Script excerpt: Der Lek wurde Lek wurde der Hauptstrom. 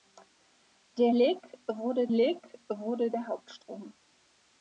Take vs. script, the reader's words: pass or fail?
pass